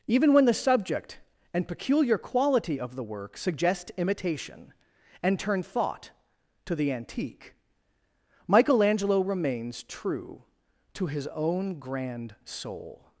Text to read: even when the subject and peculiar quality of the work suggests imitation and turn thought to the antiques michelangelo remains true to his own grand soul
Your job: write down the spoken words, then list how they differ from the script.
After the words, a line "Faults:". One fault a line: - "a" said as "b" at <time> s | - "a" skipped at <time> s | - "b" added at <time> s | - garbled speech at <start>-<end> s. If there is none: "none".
even when the subject and peculiar quality of the work suggest imitation and turn thought to the antique michelangelo remains true to his own grand soul
Faults:
- "suggests" said as "suggest" at 3.4 s
- "antiques" said as "antique" at 6.9 s